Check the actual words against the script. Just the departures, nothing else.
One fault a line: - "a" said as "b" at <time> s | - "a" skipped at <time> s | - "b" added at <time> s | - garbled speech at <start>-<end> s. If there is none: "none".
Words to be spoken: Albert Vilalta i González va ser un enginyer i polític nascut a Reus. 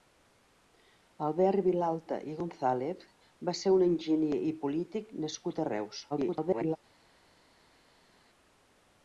- garbled speech at 6.1-6.8 s